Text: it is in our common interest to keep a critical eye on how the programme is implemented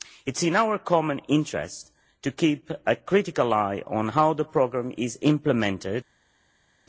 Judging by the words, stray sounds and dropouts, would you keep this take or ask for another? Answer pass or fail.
pass